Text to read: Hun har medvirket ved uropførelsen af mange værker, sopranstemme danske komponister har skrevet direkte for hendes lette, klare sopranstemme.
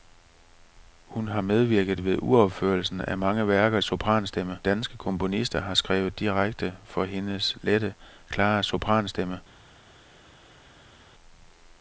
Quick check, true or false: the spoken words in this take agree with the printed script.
true